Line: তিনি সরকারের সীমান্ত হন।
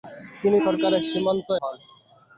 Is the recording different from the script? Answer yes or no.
no